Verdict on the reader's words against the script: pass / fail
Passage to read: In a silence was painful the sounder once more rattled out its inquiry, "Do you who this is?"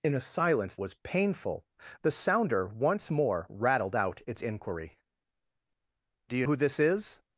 pass